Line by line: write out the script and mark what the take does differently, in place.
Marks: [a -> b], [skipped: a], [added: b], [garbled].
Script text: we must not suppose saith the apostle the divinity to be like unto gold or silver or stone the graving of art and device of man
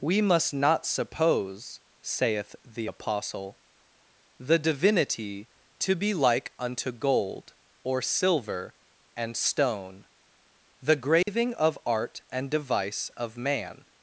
we must not suppose saith the apostle the divinity to be like unto gold or silver [or -> and] stone the graving of art and device of man